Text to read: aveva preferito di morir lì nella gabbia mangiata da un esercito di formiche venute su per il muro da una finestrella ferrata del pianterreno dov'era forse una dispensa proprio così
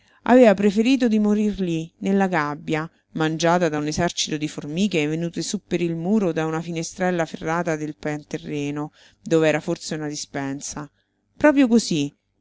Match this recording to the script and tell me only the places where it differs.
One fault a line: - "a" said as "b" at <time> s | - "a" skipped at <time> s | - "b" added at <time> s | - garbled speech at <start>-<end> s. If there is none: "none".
none